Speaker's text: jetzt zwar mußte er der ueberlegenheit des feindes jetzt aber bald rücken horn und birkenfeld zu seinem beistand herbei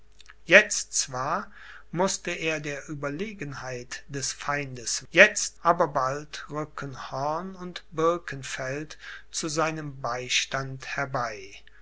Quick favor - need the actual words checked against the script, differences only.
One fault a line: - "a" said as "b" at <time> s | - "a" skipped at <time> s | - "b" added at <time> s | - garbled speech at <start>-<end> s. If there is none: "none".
none